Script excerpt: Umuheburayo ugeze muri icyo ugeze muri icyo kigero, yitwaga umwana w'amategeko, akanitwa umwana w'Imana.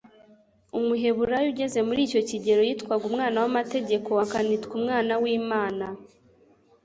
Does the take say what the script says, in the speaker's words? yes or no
no